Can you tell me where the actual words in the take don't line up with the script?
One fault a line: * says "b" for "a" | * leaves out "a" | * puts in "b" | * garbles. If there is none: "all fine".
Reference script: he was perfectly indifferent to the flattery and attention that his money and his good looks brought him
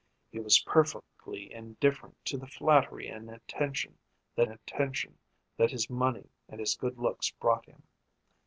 * puts in "attention that"